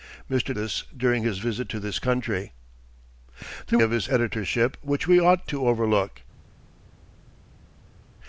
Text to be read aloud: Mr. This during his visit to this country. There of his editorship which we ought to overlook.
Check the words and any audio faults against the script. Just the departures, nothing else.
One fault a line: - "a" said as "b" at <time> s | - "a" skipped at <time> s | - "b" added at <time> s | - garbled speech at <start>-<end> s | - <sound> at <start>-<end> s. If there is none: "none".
none